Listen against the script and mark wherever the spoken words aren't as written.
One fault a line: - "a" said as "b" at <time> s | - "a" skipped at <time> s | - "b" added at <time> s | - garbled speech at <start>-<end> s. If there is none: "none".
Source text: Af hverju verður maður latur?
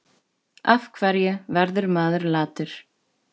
none